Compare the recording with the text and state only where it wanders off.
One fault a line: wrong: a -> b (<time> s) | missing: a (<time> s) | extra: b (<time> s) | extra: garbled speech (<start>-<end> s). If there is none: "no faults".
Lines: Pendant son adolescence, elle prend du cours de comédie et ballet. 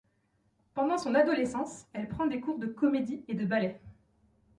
wrong: du -> des (2.2 s)
extra: de (3.4 s)